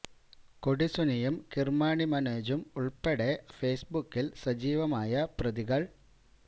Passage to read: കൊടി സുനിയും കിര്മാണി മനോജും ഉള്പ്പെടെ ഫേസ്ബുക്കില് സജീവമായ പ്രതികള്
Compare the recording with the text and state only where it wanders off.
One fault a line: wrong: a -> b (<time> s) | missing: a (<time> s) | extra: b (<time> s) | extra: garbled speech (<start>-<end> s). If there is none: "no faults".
no faults